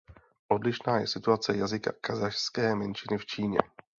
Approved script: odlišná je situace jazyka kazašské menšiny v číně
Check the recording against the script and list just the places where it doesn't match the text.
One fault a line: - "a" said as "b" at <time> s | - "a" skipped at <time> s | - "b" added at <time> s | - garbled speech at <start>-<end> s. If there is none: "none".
none